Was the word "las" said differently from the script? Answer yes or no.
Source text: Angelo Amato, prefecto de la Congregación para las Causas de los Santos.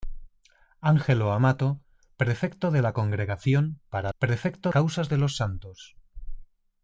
yes